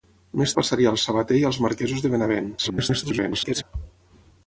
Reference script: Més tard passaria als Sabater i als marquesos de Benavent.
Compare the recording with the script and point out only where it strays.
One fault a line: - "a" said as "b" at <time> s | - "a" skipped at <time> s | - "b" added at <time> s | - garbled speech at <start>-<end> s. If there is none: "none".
- "tard" skipped at 0.6 s
- garbled speech at 2.6-3.6 s